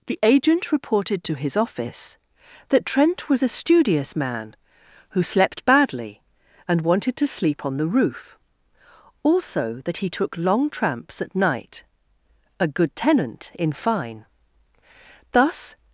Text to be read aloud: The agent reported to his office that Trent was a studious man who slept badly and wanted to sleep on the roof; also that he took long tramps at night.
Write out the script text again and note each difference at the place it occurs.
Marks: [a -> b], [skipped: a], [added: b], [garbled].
The agent reported to his office that Trent was a studious man who slept badly and wanted to sleep on the roof; also that he took long tramps at night. [added: A good tenant in fine Thus]